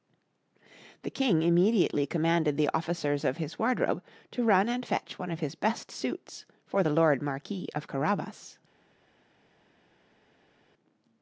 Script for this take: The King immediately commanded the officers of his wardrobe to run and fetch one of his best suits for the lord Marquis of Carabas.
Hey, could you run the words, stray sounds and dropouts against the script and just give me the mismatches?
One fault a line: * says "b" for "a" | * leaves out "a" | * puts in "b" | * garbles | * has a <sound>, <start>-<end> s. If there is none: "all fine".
all fine